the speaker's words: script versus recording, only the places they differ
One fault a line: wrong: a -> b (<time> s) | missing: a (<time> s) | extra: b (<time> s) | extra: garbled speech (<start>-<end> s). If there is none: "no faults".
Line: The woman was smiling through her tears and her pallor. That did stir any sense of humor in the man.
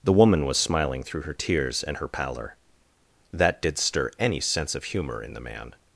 no faults